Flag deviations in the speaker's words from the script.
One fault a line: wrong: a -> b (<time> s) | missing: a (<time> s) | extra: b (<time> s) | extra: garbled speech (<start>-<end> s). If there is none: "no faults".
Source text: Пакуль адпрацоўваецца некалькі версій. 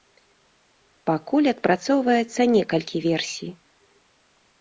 no faults